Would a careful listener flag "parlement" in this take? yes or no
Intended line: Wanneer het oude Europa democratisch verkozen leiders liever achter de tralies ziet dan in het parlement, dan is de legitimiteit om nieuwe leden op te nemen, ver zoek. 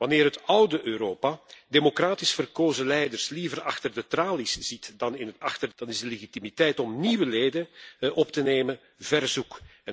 yes